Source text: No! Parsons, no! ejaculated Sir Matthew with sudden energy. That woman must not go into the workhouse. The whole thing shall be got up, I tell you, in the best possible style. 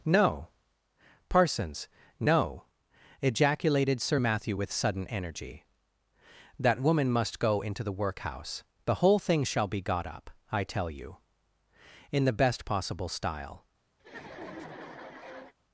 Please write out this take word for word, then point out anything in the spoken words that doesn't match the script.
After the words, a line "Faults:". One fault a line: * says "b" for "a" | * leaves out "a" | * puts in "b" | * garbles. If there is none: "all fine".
No! Parsons, no! ejaculated Sir Matthew with sudden energy. That woman must go into the workhouse. The whole thing shall be got up, I tell you, in the best possible style.
Faults:
* leaves out "not"